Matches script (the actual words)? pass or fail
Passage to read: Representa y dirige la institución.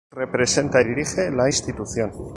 pass